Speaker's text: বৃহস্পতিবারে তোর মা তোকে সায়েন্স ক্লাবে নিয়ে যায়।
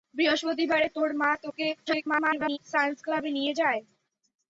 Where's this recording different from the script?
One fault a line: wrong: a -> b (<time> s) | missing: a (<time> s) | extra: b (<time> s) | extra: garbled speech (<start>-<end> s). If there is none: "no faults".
extra: garbled speech (1.9-2.6 s)